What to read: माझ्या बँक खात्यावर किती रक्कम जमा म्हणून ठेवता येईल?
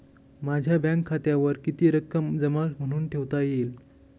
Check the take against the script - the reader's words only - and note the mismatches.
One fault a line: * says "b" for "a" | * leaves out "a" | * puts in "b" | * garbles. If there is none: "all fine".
all fine